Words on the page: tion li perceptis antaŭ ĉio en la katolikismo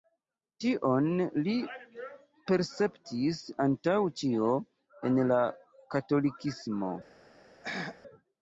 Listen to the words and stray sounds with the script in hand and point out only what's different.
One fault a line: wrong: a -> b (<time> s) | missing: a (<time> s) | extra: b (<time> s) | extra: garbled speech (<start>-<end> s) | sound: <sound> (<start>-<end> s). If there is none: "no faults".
sound: throat clearing (7.6-8.0 s)